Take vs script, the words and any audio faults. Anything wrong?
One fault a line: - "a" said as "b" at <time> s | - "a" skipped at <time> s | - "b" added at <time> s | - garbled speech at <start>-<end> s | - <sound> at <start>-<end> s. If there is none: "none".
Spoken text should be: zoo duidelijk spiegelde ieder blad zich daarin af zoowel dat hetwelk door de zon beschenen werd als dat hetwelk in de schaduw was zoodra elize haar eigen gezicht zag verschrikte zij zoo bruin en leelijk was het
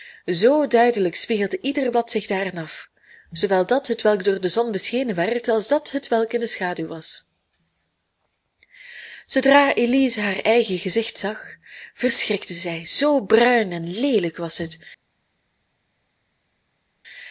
none